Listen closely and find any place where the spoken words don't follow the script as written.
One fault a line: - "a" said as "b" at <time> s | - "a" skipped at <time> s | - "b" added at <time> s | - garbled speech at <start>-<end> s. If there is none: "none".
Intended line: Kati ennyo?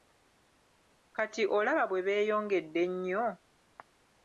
- "olaba bwe beeyongedde" added at 1.6 s